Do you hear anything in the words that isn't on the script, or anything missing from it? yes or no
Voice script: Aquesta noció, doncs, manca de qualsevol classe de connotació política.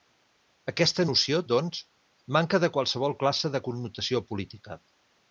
no